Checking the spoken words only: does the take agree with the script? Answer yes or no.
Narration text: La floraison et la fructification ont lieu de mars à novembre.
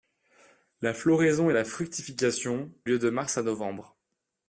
no